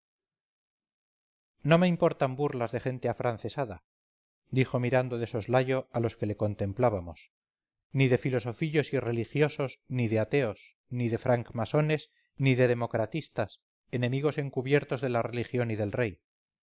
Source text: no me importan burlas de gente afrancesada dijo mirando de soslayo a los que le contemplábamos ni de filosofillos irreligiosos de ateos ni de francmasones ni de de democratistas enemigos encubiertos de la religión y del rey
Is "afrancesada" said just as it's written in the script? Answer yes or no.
yes